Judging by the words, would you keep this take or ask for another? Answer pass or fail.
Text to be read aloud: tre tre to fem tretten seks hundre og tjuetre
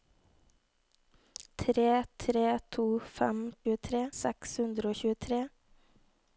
fail